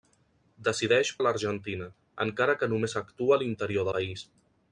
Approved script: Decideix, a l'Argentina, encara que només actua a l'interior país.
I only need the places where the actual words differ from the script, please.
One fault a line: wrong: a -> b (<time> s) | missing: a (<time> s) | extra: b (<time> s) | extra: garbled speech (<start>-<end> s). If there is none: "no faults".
no faults